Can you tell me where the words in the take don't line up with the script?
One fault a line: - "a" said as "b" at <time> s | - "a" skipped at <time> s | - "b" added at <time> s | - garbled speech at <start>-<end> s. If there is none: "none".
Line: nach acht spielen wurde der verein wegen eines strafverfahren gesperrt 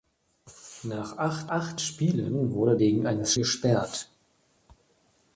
- "acht" added at 1.5 s
- "der verein" skipped at 2.8 s
- "strafverfahren" skipped at 3.3 s